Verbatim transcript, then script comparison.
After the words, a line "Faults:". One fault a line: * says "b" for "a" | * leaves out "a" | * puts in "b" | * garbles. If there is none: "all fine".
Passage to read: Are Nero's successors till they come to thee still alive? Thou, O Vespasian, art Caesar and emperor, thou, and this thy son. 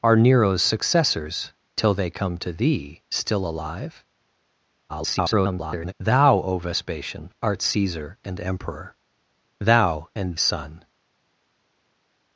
Are Nero's successors till they come to thee still alive? [garbled] Thou, O Vespasian, art Caesar and emperor, thou, and son.
Faults:
* garbles
* leaves out "this thy"